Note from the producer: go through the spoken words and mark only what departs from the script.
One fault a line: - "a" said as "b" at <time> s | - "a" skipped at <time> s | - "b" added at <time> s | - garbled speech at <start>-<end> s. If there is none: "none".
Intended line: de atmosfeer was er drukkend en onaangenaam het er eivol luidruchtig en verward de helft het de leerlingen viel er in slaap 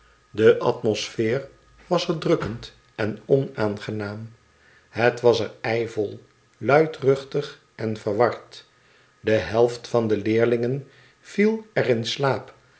- "was" added at 5.2 s
- "het" said as "van" at 9.9 s